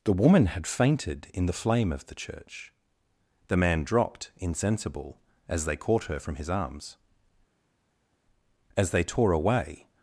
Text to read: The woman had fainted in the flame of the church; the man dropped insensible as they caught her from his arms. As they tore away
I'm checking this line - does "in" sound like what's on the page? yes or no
yes